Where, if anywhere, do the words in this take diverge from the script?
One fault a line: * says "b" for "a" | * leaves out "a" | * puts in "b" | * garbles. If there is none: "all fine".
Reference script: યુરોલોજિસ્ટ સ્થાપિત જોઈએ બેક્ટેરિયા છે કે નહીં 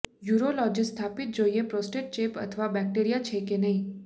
* puts in "પ્રોસ્ટેટ ચેપ અથવા"